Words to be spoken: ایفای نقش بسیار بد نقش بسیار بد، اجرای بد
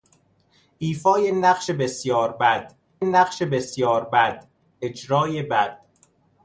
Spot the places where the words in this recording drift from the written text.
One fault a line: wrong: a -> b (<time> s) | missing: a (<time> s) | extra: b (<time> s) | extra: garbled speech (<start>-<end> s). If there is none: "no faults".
no faults